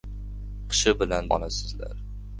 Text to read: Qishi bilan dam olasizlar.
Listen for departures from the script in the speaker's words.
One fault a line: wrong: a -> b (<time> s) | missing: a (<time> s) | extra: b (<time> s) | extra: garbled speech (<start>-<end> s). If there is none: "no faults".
missing: dam (1.3 s)